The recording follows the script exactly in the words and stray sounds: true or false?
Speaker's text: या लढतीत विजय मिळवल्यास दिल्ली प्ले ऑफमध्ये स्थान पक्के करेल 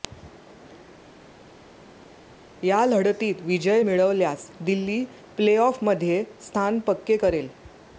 true